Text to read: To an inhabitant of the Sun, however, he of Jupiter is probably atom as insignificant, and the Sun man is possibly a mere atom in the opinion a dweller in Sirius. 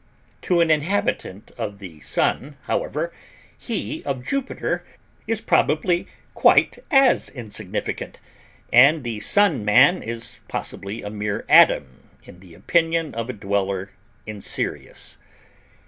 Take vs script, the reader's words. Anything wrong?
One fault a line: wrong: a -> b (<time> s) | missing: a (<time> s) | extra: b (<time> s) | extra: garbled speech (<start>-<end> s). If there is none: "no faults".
wrong: atom -> quite (6.3 s)
extra: of (13.1 s)